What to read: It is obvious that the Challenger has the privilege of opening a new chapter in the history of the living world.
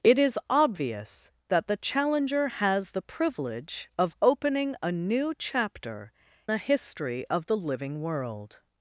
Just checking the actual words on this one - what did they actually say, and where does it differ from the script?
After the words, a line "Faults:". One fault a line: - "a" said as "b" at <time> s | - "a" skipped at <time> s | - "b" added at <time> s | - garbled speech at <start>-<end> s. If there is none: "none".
It is obvious that the Challenger has the privilege of opening a new chapter the history of the living world.
Faults:
- "in" skipped at 6.1 s